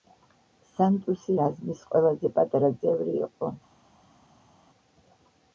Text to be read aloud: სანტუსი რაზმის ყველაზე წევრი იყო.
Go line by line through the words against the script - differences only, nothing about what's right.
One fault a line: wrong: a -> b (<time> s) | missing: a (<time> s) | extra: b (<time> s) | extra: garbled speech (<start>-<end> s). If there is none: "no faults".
extra: პატარა (2.4 s)